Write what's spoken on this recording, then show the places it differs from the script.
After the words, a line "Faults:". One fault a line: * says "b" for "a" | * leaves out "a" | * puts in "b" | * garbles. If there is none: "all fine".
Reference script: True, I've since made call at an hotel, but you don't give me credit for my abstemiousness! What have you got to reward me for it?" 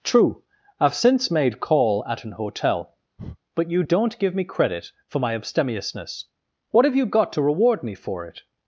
True, I've since made call at an hotel, but you don't give me credit for my abstemiousness! What have you got to reward me for it?"
Faults:
all fine